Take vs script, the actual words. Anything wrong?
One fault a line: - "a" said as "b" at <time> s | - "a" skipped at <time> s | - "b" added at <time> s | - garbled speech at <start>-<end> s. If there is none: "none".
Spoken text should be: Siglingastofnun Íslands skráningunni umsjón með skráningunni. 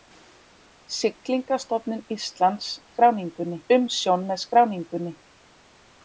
none